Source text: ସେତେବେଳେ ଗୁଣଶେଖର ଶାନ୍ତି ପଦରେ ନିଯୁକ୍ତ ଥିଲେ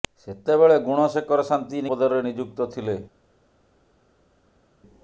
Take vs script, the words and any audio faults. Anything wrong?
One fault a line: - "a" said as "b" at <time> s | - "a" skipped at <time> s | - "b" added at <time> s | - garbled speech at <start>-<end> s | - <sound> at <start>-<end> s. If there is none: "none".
none